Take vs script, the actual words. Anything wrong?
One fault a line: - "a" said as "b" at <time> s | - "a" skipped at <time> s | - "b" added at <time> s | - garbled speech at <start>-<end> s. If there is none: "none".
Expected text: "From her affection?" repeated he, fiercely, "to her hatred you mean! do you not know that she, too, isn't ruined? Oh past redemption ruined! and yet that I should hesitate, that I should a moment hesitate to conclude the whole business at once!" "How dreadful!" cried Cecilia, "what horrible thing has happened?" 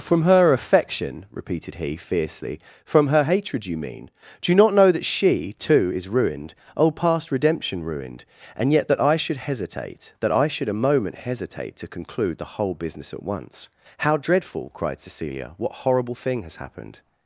- "to" said as "from" at 2.8 s
- "isn't" said as "is" at 5.9 s